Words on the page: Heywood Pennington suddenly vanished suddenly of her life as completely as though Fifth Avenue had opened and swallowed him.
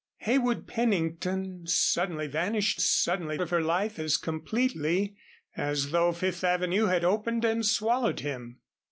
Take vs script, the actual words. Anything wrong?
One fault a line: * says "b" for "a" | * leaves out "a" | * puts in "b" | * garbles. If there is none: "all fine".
all fine